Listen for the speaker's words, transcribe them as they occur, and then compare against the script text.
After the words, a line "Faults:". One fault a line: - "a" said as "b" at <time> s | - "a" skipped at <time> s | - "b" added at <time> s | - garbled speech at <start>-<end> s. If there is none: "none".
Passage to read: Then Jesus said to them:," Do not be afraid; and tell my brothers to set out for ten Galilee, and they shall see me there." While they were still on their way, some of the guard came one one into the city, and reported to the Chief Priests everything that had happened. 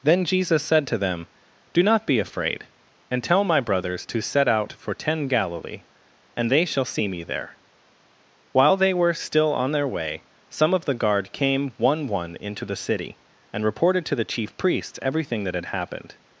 Then Jesus said to them:," Do not be afraid; and tell my brothers to set out for ten Galilee, and they shall see me there." While they were still on their way, some of the guard came one one into the city, and reported to the Chief Priests everything that had happened.
Faults:
none